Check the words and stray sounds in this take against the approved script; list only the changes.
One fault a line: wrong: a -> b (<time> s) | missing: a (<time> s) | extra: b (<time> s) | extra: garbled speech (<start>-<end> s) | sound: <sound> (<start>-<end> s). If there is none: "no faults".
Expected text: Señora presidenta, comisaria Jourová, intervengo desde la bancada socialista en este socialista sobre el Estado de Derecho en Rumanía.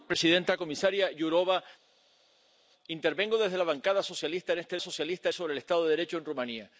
no faults